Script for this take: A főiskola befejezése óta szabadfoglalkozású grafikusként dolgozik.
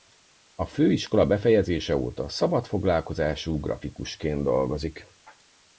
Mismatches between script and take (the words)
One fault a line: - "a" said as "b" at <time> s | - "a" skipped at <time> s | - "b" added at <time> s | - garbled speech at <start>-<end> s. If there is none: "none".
none